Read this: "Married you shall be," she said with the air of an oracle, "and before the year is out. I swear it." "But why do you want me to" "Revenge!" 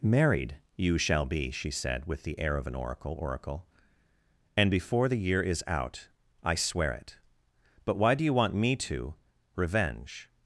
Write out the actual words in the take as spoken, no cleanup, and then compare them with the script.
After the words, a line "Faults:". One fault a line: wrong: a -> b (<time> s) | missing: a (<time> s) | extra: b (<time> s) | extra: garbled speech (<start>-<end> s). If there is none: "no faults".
"Married you shall be," she said with the air of an oracle oracle, "and before the year is out. I swear it." "But why do you want me to" "Revenge!"
Faults:
extra: oracle (3.2 s)